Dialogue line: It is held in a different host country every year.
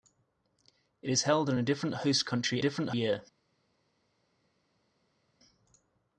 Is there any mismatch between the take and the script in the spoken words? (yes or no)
yes